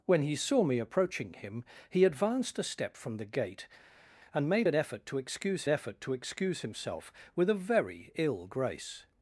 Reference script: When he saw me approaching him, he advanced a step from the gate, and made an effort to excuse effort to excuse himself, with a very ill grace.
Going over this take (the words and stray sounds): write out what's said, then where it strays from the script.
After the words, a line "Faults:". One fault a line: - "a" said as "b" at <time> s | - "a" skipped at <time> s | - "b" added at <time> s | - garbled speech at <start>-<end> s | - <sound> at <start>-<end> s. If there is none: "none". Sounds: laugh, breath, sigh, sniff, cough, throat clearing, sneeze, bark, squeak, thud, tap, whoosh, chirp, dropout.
When he saw me approaching him, he advanced a step from the gate, and made an effort to excuse effort to excuse himself, with a very ill grace.
Faults:
none